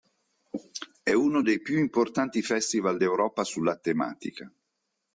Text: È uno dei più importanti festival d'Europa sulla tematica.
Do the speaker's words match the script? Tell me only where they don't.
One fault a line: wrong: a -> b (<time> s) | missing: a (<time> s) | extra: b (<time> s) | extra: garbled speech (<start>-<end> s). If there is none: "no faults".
no faults